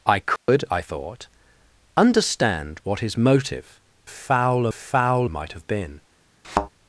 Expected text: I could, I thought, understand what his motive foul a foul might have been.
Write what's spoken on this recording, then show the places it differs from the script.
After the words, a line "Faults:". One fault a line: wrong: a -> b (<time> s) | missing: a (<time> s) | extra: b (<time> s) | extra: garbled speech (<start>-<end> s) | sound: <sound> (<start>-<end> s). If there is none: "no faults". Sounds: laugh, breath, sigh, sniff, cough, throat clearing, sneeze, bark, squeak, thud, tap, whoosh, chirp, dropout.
I could, I thought, understand what his motive foul a foul might have been.
Faults:
sound: dropout (0.4-0.5 s)
sound: thud (6.4-6.7 s)